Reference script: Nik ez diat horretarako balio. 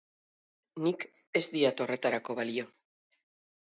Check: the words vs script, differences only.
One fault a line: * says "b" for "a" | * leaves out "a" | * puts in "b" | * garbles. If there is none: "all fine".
all fine